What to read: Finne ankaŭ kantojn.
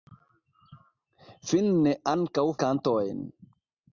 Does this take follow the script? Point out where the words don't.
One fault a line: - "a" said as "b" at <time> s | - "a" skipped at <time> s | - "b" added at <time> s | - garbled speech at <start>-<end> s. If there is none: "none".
none